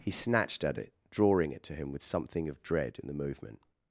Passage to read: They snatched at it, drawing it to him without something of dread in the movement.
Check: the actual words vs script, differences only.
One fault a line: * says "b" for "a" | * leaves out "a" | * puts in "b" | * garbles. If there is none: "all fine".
* says "He" for "They"
* says "with" for "without"